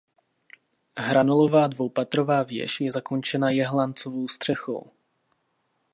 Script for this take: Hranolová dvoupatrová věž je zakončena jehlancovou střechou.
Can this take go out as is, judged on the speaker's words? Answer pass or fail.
pass